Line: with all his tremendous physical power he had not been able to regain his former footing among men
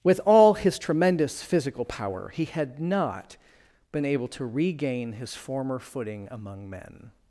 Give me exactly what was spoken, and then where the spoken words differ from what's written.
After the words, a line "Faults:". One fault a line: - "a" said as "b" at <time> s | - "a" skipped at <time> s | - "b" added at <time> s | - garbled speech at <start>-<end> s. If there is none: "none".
with all his tremendous physical power he had not been able to regain his former footing among men
Faults:
none